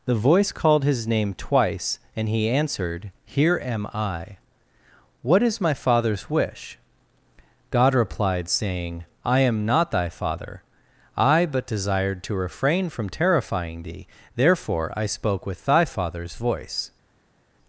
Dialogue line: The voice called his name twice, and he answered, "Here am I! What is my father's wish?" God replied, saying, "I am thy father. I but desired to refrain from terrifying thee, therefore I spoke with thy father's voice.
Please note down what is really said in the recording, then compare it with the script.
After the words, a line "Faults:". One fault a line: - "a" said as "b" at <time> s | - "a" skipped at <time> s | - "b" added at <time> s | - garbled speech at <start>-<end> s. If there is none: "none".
The voice called his name twice, and he answered, "Here am I! What is my father's wish?" God replied, saying, "I am not thy father. I but desired to refrain from terrifying thee, therefore I spoke with thy father's voice.
Faults:
- "not" added at 9.6 s